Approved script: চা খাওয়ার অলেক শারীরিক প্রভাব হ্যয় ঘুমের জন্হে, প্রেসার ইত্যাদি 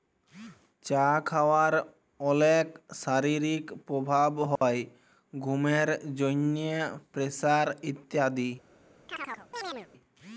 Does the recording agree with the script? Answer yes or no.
yes